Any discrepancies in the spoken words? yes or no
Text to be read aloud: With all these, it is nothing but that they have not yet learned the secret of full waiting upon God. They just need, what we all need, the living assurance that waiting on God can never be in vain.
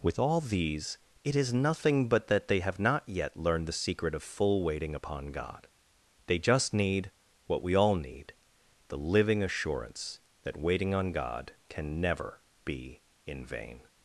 no